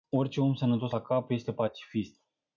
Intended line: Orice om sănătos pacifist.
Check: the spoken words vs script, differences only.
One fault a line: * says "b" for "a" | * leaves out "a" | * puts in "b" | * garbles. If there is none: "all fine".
* puts in "la cap este"